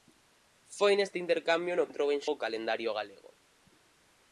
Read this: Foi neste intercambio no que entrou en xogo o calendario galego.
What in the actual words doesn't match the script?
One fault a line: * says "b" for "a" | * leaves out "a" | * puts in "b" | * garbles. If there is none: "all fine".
* leaves out "que"
* leaves out "xogo"